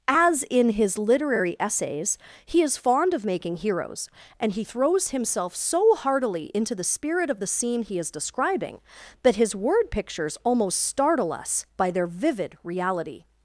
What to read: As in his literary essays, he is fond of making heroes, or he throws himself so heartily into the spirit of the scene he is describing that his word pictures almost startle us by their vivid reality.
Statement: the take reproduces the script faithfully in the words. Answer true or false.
false